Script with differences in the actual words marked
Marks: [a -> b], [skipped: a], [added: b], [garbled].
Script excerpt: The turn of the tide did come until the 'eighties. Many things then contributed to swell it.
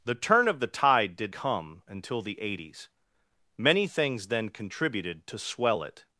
The turn of the tide did come until the 'eighties. Many things then contributed to swell it.